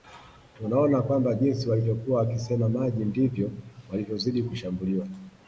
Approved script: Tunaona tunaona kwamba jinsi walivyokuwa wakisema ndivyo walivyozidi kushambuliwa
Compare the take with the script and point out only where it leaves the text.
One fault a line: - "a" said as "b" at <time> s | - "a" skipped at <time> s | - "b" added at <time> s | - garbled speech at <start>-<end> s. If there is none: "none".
- "tunaona" skipped at 1.0 s
- "maji" added at 2.7 s